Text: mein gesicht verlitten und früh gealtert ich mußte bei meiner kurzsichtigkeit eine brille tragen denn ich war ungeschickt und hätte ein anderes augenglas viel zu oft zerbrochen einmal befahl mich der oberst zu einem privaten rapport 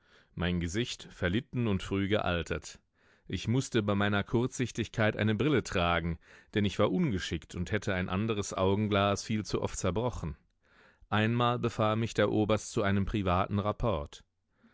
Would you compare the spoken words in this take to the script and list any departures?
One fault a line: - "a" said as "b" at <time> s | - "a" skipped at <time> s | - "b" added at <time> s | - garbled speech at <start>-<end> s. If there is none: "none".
none